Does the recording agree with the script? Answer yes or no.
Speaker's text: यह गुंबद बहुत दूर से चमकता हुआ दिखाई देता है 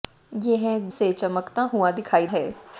no